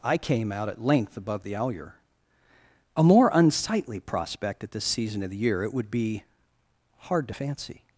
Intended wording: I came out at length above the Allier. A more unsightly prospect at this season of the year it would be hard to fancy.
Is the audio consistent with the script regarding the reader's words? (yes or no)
yes